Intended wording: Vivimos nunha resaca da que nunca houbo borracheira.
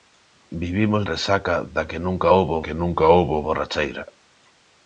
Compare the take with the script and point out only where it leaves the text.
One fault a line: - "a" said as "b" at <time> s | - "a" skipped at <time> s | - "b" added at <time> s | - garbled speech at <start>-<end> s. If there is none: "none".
- "nunha" skipped at 1.0 s
- "que nunca houbo" added at 2.6 s